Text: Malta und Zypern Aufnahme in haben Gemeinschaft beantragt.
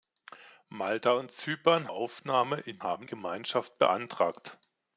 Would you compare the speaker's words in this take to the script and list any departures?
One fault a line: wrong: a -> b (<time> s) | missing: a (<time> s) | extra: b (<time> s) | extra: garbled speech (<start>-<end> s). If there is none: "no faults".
no faults